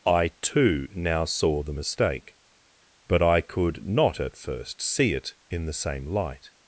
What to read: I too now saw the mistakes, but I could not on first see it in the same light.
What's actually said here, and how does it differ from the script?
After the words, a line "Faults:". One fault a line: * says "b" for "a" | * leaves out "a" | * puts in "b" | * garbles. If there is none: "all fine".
I too now saw the mistake, but I could not at first see it in the same light.
Faults:
* says "mistake" for "mistakes"
* says "at" for "on"